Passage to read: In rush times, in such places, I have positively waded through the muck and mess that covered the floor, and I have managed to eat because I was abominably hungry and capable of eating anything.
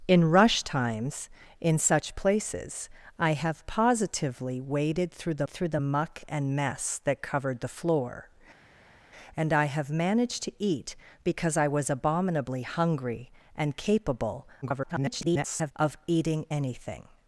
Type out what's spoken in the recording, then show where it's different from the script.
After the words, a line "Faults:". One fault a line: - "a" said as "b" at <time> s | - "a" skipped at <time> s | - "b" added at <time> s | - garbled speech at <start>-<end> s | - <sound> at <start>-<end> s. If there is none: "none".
In rush times, in such places, I have positively waded through the through the muck and mess that covered the floor, and I have managed to eat because I was abominably hungry and capable [garbled] of eating anything.
Faults:
- "through the" added at 5.5 s
- garbled speech at 14.6-15.7 s